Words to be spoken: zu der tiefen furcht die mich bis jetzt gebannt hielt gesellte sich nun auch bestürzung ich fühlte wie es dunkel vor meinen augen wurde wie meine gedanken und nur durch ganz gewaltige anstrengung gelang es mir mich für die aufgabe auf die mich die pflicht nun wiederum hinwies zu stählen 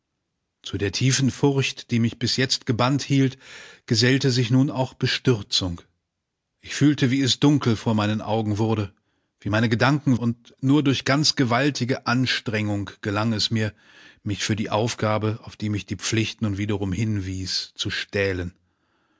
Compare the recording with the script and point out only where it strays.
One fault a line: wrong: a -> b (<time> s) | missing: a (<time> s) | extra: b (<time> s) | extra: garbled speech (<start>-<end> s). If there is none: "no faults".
no faults